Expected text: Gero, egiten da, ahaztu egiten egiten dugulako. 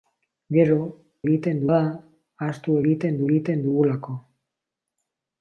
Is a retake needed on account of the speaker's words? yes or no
no